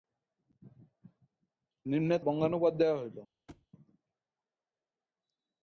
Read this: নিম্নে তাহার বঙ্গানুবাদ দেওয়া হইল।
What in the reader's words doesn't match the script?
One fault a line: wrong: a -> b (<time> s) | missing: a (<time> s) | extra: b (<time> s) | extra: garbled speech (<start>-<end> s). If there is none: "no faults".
missing: তাহার (2.2 s)